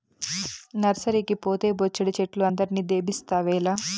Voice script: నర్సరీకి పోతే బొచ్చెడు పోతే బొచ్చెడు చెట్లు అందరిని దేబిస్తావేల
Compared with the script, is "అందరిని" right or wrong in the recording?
right